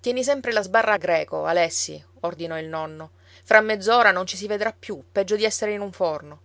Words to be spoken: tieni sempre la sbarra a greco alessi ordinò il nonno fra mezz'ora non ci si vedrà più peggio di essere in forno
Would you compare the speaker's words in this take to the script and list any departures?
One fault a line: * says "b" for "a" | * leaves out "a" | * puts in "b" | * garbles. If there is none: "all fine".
* puts in "un"